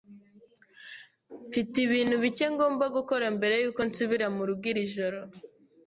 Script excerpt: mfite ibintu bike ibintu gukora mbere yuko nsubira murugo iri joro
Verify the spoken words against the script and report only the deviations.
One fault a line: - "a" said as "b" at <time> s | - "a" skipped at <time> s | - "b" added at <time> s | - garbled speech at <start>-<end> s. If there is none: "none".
- "ibintu" said as "ngomba" at 2.5 s